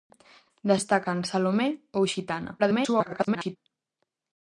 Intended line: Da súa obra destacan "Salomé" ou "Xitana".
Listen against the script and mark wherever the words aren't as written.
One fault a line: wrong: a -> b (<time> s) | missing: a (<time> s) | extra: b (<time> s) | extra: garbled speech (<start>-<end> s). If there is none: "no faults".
missing: súa obra (0.8 s)
extra: garbled speech (2.6-3.6 s)